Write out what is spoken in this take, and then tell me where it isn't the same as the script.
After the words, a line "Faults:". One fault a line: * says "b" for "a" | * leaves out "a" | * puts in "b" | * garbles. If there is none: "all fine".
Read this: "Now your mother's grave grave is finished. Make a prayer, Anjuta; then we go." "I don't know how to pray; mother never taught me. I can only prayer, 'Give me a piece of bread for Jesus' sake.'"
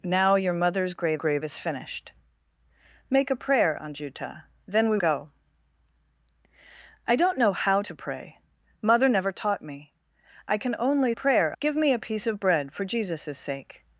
"Now your mother's grave grave is finished. Make a prayer, Anjuta; then we go." "I don't know how to pray; mother never taught me. I can only prayer, 'Give me a piece of bread for Jesus' sake.'"
Faults:
all fine